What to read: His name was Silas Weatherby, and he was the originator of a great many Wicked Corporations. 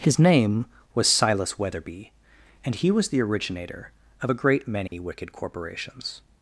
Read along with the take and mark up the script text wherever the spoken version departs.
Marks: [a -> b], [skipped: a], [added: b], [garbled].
His name was Silas Weatherby, and he was the originator of a great many Wicked Corporations.